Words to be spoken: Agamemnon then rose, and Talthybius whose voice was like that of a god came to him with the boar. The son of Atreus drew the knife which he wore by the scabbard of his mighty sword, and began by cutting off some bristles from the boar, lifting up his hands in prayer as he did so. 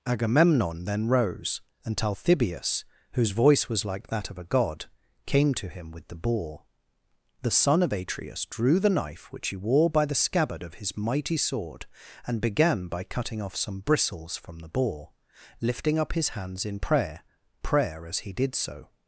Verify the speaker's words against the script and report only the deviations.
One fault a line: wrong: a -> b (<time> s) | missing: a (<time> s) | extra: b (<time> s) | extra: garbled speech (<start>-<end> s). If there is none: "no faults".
extra: prayer (17.6 s)